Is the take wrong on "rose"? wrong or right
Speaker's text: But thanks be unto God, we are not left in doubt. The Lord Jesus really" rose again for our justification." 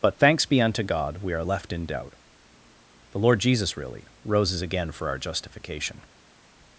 wrong